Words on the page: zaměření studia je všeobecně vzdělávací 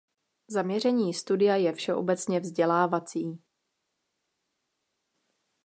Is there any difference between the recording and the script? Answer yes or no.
no